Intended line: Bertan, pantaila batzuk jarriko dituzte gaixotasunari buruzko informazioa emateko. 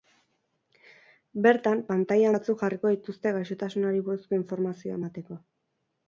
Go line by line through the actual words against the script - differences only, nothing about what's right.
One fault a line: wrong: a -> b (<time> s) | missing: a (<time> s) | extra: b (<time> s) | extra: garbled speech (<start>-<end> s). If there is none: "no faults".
no faults